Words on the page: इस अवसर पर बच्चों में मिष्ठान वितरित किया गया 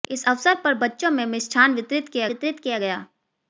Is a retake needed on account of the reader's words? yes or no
yes